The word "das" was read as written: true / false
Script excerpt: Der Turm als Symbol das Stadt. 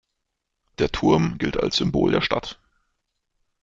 false